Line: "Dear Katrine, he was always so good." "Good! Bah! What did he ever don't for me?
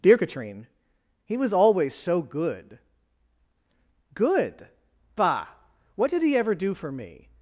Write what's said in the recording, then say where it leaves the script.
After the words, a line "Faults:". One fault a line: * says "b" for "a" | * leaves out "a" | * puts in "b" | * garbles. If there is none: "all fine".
"Dear Katrine, he was always so good." "Good! Bah! What did he ever do for me?
Faults:
* says "do" for "don't"